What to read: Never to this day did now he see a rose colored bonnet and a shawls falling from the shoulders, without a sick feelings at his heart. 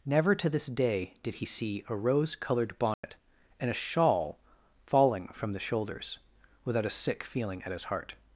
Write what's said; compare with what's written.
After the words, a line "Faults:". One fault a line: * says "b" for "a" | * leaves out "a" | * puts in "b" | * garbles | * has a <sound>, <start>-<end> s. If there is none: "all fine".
Never to this day did he see a rose colored bonnet and a shawl falling from the shoulders, without a sick feeling at his heart.
Faults:
* leaves out "now"
* has a dropout, 2.9-3.0 s
* says "shawl" for "shawls"
* says "feeling" for "feelings"